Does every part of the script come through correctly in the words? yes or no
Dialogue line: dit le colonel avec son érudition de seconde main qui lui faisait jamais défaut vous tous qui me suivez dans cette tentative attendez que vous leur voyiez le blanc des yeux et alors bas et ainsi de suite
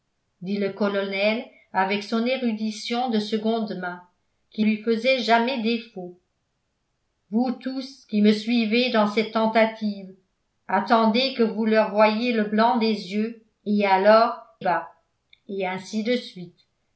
yes